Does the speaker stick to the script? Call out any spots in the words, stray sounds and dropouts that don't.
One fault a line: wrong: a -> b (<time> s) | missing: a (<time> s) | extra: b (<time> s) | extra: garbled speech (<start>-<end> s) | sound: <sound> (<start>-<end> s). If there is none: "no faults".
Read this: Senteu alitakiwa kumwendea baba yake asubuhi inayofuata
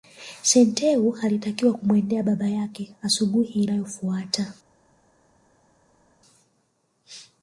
no faults